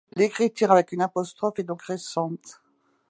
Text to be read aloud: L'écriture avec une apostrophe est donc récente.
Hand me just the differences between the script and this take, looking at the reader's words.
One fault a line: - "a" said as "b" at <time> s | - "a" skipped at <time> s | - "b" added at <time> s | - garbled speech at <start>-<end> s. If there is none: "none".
none